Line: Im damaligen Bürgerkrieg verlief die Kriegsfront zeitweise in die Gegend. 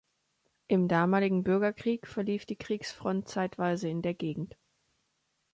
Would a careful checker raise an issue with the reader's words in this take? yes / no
yes